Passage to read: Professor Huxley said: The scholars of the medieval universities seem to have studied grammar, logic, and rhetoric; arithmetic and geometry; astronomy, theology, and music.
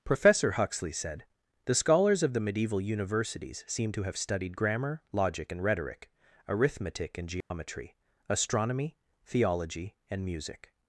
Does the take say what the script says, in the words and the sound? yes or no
no